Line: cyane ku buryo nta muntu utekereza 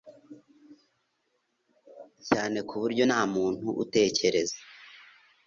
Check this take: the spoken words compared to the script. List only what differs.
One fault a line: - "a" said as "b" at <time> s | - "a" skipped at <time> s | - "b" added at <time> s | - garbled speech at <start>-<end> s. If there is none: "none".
none